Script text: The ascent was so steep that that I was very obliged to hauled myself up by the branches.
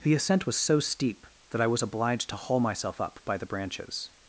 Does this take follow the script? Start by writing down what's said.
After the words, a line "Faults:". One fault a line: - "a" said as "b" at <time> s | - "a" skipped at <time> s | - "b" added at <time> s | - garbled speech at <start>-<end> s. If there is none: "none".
The ascent was so steep that I was obliged to haul myself up by the branches.
Faults:
- "that" skipped at 1.6 s
- "very" skipped at 1.8 s
- "hauled" said as "haul" at 2.4 s